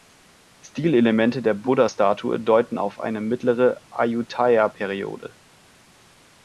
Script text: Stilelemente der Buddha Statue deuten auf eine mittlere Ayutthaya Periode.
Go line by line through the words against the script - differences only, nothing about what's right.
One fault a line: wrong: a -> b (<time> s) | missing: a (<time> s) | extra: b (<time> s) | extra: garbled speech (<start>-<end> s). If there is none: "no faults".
no faults